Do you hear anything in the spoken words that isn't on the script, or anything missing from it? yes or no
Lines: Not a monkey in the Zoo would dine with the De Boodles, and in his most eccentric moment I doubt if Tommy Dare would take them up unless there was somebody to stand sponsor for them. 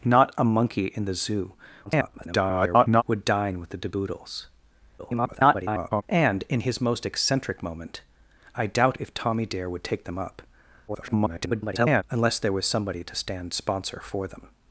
yes